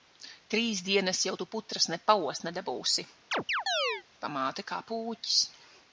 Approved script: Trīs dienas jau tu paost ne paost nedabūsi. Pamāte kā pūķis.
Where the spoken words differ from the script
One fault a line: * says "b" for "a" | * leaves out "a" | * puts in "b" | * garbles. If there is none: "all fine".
* says "putras" for "paost"